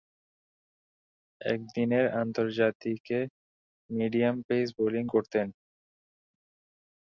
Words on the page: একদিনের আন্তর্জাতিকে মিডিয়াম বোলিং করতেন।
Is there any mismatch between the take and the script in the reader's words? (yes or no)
yes